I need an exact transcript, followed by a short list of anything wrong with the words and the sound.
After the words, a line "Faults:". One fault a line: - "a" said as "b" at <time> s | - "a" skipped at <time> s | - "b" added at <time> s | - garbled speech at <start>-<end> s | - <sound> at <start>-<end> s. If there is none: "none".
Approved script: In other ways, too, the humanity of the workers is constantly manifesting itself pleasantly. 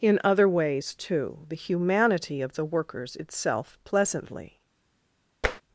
In other ways, too, the humanity of the workers itself pleasantly.
Faults:
- "is constantly manifesting" skipped at 3.2 s
- tap at 5.4-5.6 s